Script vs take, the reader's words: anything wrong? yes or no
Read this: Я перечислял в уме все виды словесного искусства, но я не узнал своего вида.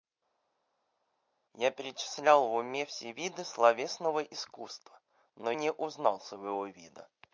yes